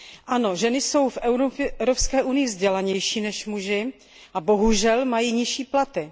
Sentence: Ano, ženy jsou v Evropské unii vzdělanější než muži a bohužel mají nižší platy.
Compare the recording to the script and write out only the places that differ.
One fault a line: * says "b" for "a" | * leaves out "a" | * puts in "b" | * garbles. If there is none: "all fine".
all fine